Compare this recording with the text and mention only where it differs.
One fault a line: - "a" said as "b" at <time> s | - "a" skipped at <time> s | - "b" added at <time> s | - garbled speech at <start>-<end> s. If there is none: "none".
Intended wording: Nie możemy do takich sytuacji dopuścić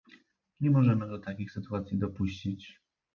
none